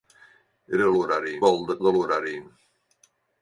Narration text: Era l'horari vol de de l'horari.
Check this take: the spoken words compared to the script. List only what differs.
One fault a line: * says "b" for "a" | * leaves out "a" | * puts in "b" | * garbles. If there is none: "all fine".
all fine